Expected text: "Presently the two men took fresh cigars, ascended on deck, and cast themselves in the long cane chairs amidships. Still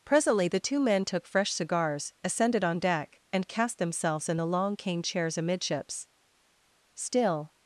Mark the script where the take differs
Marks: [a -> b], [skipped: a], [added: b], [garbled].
"Presently the two men took fresh cigars, ascended on deck, and cast themselves in the long cane chairs amidships. Still